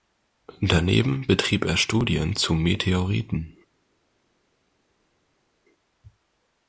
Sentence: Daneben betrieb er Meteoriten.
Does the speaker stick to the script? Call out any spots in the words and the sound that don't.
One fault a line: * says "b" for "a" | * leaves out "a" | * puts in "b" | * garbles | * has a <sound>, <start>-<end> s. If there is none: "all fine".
* puts in "Studien zu"